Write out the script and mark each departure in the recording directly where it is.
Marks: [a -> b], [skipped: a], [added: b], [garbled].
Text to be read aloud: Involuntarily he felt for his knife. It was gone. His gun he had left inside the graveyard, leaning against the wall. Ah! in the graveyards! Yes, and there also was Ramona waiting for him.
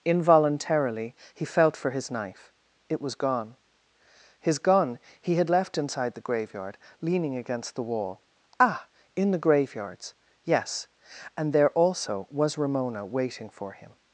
Involuntarily he felt for his knife. It was gone. His gun he had left inside the graveyard, leaning against the wall. Ah! in the graveyards! Yes, and there also was Ramona waiting for him.